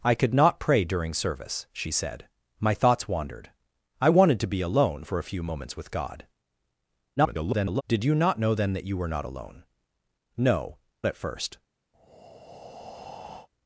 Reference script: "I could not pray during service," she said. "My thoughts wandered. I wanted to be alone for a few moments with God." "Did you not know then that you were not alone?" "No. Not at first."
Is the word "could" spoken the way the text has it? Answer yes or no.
yes